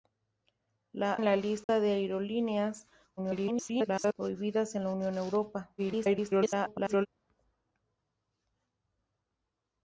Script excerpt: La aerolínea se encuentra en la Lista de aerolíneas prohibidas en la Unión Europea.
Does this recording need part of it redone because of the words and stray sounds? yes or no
yes